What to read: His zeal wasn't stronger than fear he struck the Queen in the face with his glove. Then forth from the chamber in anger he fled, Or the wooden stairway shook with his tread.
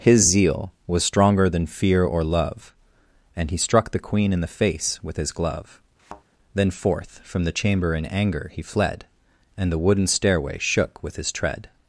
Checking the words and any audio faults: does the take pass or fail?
fail